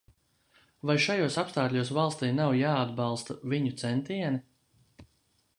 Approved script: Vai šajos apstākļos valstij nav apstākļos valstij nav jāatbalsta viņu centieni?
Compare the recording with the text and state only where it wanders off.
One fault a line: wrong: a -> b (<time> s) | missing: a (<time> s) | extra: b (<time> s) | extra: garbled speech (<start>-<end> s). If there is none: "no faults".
missing: apstākļos valstij nav (2.5 s)